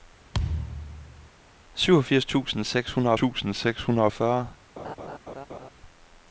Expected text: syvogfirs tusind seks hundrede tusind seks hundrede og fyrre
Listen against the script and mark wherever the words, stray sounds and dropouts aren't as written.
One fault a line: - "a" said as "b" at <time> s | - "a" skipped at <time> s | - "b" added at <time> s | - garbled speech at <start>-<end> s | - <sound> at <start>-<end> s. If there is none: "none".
- thud at 0.3-1.3 s
- laugh at 4.8-5.7 s